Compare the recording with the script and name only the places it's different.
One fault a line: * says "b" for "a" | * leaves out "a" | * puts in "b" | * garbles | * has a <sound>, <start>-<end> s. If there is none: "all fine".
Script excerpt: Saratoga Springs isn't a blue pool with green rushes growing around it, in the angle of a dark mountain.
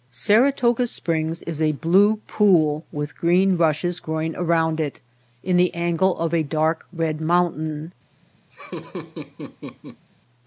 * says "is" for "isn't"
* puts in "red"
* has a laugh, 8.5-10.0 s